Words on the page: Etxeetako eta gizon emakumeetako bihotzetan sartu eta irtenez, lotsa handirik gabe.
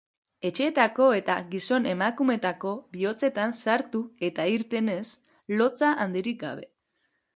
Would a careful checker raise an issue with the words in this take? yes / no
no